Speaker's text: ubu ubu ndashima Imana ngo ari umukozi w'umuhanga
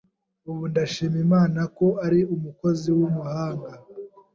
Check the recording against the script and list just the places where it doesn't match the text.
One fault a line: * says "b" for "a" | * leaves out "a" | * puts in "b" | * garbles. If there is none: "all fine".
* leaves out "ubu"
* says "ko" for "ngo"